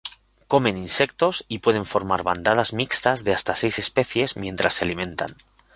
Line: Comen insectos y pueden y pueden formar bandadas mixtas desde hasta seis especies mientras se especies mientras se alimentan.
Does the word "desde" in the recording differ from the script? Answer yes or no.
yes